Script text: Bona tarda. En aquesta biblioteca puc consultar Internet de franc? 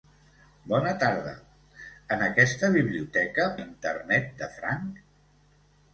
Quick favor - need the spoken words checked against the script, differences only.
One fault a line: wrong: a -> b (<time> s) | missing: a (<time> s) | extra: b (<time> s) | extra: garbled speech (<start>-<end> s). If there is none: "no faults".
missing: puc consultar (3.5 s)